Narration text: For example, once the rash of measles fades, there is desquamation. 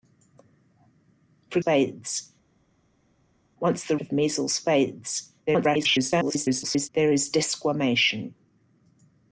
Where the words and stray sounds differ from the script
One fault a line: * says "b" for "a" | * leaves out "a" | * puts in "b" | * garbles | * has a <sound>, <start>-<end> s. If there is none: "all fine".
* says "fades" for "example"
* leaves out "rash"
* garbles